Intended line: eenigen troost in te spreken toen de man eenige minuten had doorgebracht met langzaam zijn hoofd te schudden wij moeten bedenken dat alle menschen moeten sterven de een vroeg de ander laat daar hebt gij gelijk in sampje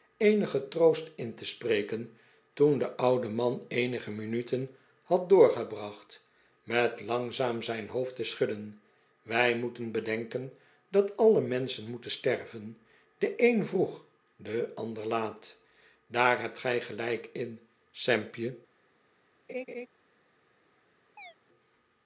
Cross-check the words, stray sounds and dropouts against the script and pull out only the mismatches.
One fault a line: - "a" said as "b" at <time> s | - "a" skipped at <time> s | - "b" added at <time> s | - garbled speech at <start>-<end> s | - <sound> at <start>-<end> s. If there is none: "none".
- "oude" added at 3.0 s
- laugh at 19.5-19.9 s
- chirp at 21.2-21.3 s